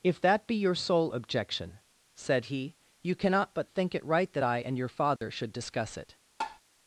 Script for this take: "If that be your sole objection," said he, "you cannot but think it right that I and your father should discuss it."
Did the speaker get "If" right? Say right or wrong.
right